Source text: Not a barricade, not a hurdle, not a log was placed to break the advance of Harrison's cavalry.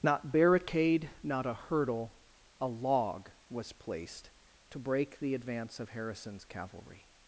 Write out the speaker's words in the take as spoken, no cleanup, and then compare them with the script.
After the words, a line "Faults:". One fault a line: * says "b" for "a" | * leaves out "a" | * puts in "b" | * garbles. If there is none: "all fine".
Not barricade, not a hurdle, a log was placed to break the advance of Harrison's cavalry.
Faults:
* leaves out "a"
* leaves out "not"